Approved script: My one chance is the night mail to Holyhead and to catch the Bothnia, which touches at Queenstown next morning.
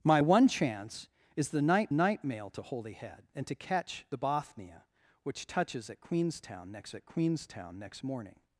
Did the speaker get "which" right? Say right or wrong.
right